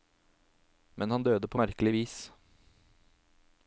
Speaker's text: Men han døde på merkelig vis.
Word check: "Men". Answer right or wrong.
right